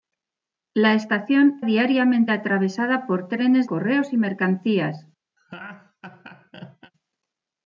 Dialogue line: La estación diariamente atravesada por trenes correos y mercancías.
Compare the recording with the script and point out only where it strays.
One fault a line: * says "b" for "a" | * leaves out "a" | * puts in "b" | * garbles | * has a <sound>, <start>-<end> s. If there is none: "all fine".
* has a laugh, 5.4-6.9 s